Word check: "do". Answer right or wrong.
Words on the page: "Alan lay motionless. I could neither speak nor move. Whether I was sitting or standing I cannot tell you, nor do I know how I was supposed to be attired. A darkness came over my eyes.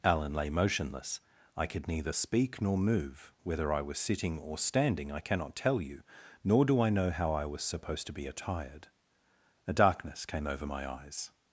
right